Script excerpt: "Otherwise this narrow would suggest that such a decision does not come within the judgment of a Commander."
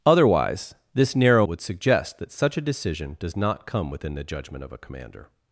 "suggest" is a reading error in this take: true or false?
false